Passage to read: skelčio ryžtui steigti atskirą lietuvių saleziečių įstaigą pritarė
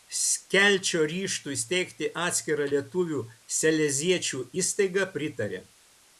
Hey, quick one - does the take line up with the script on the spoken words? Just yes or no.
yes